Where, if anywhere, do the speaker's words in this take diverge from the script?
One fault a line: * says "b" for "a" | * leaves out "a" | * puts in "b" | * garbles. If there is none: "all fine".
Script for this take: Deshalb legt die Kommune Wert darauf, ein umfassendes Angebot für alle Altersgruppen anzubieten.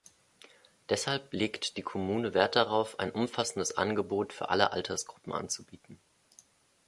all fine